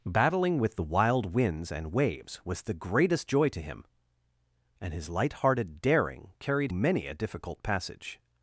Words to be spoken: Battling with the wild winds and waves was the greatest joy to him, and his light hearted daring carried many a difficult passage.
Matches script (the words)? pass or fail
pass